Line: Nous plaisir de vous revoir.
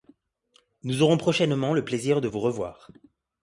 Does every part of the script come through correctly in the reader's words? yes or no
no